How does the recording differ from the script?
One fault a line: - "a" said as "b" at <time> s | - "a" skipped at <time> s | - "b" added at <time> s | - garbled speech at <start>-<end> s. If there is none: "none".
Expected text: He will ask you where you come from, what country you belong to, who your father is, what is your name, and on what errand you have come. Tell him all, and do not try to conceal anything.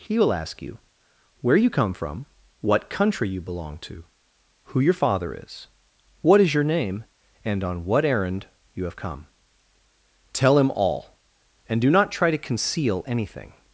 none